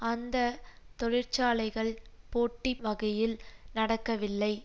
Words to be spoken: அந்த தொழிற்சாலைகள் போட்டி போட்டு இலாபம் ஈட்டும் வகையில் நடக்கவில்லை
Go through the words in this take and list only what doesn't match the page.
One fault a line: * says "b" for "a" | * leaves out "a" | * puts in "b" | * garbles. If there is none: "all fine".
* leaves out "போட்டு இலாபம் ஈட்டும்"